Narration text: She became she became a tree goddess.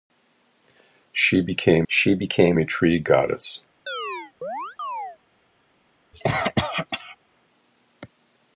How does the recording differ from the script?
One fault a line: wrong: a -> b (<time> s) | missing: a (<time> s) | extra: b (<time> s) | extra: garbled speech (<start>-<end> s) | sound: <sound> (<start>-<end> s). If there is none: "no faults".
sound: chirp (3.9-5.2 s)
sound: cough (6.1-7.2 s)